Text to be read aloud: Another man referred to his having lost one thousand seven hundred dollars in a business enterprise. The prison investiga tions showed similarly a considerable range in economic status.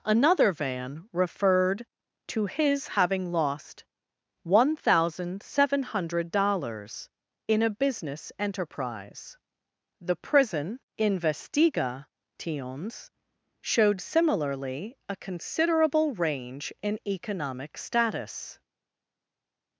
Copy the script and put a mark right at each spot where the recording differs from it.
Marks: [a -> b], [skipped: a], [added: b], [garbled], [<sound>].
Another [man -> van] referred to his having lost one thousand seven hundred dollars in a business enterprise. The prison investiga tions showed similarly a considerable range in economic status.